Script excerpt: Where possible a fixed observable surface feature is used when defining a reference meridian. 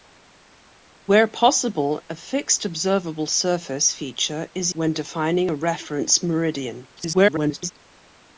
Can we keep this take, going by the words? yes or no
no